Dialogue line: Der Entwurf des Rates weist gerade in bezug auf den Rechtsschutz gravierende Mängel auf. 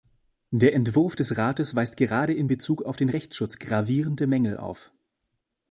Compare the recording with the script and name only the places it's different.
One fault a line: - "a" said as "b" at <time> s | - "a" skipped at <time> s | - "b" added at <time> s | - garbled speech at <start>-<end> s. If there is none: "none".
none